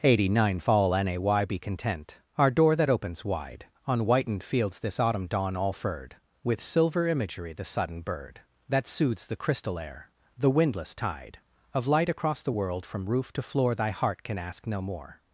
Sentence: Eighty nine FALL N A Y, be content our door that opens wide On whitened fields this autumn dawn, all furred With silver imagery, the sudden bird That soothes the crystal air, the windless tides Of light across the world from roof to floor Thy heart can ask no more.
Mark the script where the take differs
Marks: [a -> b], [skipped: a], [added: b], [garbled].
Eighty nine FALL N A Y, be content our door that opens wide On whitened fields this autumn dawn, all furred With silver imagery, the sudden bird That soothes the crystal air, the windless [tides -> tide] Of light across the world from roof to floor Thy heart can ask no more.